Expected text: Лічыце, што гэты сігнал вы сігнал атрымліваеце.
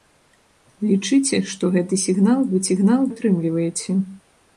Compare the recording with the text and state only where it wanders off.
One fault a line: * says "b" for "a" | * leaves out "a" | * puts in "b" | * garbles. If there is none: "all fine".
all fine